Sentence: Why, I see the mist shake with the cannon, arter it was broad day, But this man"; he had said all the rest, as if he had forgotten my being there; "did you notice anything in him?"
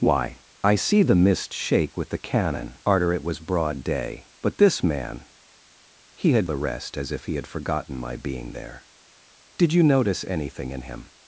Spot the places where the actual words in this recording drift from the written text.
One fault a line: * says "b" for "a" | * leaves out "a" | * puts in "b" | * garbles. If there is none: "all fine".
* leaves out "said all"